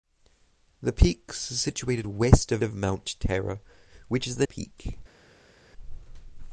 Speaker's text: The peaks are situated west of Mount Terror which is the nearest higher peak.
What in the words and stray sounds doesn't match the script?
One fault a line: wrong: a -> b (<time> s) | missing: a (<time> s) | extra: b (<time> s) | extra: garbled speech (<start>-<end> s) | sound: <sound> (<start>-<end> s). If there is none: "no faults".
extra: of (2.6 s)
missing: nearest higher (4.5 s)